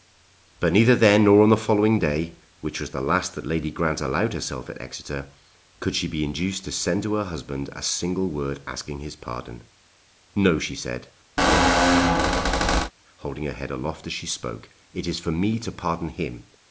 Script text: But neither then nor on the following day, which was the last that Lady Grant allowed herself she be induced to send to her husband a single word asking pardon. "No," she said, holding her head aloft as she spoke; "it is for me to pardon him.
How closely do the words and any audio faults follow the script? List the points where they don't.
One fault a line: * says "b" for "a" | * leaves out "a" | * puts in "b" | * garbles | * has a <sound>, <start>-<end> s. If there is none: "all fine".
* puts in "at Exeter could"
* puts in "his"
* has a squeak, 11.4-12.9 s